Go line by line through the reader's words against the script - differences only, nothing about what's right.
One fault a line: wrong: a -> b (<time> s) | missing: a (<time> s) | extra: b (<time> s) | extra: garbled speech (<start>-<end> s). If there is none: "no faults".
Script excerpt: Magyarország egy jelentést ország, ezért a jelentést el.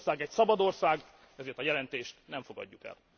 wrong: jelentést -> szabad (0.3 s)
extra: nem fogadjuk (2.3 s)